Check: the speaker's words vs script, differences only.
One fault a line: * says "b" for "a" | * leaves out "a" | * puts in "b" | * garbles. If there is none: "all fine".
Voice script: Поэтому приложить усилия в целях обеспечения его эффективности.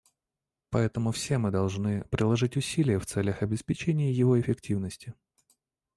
* puts in "все мы должны"